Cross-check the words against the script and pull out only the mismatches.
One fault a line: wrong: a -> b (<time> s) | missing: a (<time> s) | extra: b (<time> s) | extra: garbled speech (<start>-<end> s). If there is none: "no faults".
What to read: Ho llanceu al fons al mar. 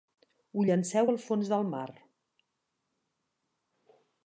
wrong: al -> del (1.5 s)